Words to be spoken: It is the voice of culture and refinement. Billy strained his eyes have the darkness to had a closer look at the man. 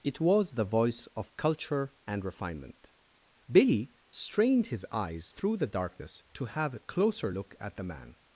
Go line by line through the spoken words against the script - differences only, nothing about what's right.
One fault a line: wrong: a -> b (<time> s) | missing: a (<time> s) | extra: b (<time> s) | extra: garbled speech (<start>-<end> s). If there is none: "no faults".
wrong: is -> was (0.2 s)
wrong: have -> through (5.3 s)
wrong: had -> have (6.5 s)